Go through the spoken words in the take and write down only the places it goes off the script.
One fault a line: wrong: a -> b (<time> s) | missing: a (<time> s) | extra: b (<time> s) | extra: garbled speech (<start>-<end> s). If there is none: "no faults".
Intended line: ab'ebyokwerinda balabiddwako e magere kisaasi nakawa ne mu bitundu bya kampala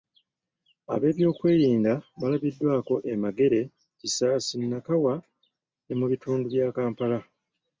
no faults